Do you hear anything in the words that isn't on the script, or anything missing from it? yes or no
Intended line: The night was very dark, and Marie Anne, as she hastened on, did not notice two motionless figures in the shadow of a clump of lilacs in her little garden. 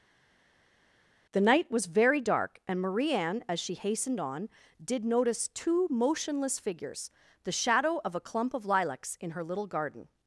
yes